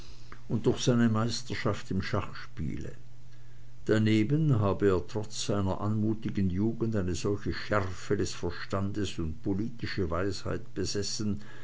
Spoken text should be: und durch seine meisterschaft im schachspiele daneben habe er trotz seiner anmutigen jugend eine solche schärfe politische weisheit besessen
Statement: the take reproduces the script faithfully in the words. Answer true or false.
false